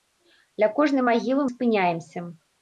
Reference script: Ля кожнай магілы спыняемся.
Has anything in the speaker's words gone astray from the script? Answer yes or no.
no